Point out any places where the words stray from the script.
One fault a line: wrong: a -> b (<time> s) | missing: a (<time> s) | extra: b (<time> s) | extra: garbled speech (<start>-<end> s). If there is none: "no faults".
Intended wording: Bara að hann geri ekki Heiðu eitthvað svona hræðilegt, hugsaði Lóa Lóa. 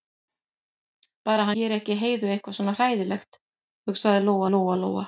missing: hann (1.5 s)
extra: Lóa (4.8 s)